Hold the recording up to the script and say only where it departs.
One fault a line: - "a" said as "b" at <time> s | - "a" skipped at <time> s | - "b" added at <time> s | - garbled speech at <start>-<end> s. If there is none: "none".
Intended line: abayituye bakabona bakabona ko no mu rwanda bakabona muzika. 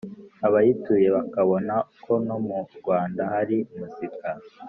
- "bakabona" skipped at 1.8 s
- "bakabona" said as "hari" at 3.3 s